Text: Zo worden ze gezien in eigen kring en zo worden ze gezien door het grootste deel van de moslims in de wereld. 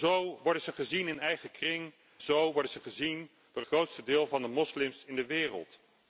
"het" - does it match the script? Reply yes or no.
no